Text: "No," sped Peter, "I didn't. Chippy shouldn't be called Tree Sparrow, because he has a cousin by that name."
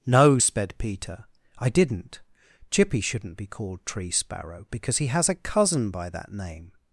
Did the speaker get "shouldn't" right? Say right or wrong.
right